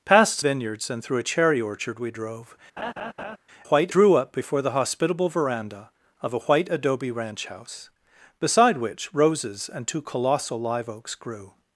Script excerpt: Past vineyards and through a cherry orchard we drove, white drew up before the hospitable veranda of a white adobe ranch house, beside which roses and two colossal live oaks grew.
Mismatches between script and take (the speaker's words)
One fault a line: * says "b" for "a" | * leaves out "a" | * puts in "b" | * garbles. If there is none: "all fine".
all fine